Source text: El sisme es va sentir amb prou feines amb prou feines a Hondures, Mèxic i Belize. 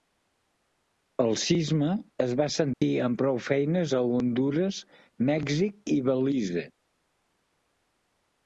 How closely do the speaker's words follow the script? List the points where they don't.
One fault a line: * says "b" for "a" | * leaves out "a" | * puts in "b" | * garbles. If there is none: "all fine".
* leaves out "amb prou feines"